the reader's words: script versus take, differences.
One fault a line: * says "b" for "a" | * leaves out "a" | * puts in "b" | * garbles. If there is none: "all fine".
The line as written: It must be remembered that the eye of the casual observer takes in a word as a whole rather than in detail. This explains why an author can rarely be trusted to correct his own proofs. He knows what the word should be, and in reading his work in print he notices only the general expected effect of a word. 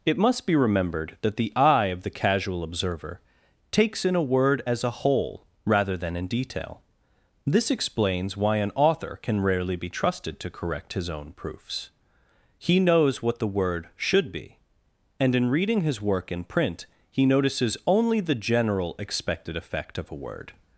all fine